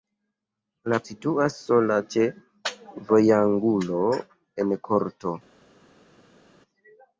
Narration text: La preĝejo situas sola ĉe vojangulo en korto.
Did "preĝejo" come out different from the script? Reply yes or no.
yes